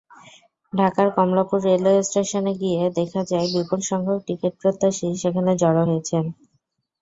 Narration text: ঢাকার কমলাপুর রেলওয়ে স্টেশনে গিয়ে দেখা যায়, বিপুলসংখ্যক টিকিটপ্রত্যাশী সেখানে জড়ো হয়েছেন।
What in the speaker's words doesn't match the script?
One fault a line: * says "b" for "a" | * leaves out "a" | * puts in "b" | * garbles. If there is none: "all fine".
all fine